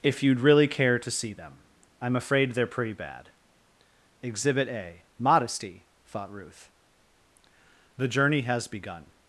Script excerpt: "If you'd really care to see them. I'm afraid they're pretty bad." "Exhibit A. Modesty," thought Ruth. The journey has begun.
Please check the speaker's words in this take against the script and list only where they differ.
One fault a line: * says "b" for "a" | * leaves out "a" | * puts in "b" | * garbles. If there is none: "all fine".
all fine